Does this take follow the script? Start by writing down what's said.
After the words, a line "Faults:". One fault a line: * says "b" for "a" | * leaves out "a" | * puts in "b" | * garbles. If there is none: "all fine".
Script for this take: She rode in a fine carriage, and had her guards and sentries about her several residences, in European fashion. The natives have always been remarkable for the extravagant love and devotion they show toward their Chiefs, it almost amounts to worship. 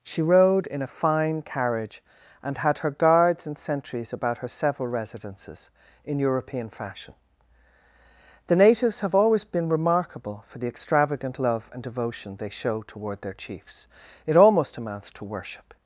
She rode in a fine carriage, and had her guards and sentries about her several residences, in European fashion. The natives have always been remarkable for the extravagant love and devotion they show toward their Chiefs, it almost amounts to worship.
Faults:
all fine